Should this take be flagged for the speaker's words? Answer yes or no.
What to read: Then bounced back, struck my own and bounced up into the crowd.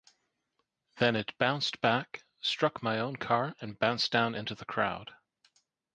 yes